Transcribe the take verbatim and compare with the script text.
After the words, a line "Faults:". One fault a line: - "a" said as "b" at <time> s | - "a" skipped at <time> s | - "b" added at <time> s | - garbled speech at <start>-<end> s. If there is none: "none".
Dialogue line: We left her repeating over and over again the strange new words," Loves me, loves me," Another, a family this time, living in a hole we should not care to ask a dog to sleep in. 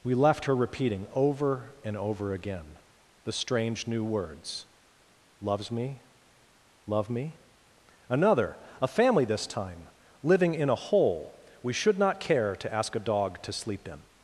We left her repeating over and over again the strange new words," Loves me, love me," Another, a family this time, living in a hole we should not care to ask a dog to sleep in.
Faults:
- "loves" said as "love" at 6.9 s